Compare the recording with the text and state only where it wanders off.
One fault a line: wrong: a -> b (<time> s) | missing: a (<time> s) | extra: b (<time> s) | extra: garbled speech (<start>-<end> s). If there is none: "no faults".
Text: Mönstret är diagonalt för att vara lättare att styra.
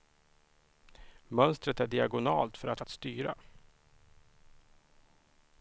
missing: vara lättare (2.8 s)